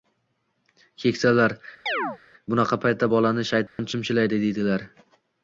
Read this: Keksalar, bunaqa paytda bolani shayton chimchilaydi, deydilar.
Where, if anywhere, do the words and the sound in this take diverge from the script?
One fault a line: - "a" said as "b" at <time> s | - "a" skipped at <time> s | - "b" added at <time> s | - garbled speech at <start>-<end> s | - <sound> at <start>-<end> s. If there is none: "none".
- chirp at 1.9-2.2 s
- dropout at 3.7-3.8 s